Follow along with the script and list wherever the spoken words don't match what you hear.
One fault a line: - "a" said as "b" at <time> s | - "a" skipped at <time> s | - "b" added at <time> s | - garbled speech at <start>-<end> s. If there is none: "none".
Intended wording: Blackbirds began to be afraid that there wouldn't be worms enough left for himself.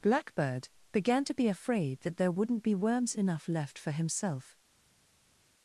- "Blackbirds" said as "Blackbird" at 0.0 s